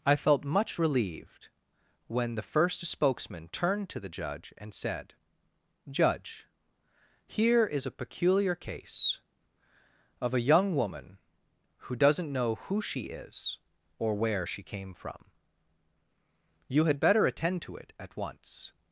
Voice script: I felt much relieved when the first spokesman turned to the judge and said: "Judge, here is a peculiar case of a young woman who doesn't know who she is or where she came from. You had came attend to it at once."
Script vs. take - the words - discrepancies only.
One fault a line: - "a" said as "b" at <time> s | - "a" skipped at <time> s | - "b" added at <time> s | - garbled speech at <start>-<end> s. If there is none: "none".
- "came" said as "better" at 17.0 s